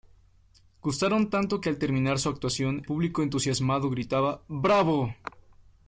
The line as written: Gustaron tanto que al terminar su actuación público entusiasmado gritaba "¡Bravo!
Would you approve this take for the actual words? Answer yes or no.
yes